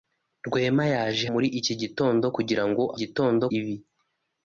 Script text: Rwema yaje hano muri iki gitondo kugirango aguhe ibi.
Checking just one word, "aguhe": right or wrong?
wrong